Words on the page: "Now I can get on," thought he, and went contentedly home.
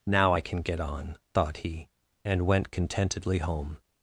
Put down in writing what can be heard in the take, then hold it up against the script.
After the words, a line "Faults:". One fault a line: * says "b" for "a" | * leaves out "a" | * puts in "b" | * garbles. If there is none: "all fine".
"Now I can get on," thought he, and went contentedly home.
Faults:
all fine